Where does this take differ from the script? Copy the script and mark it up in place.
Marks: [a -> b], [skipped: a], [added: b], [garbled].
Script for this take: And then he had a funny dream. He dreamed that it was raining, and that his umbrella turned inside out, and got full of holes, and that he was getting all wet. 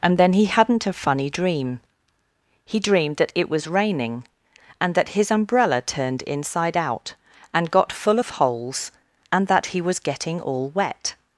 And then he [had -> hadn't] a funny dream. He dreamed that it was raining, and that his umbrella turned inside out, and got full of holes, and that he was getting all wet.